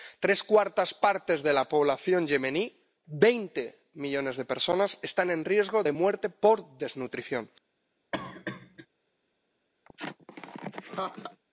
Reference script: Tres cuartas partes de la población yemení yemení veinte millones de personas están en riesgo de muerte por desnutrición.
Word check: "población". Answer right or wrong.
right